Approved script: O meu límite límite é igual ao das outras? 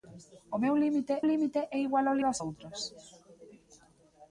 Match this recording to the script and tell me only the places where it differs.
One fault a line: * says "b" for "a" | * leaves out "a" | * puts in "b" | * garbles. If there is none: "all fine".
all fine